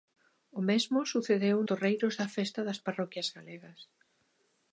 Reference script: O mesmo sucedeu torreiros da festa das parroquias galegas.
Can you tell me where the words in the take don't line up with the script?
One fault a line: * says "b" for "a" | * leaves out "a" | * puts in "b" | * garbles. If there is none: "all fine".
all fine